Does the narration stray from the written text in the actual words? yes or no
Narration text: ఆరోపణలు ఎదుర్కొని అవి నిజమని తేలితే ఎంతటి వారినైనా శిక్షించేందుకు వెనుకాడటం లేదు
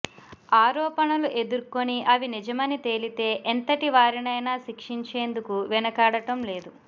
no